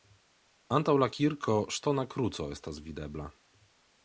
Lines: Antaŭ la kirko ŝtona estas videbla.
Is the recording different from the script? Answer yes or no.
yes